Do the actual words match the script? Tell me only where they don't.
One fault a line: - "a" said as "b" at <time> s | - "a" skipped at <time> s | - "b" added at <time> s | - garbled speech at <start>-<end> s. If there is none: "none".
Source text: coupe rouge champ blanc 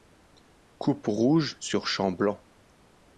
- "sur" added at 1.6 s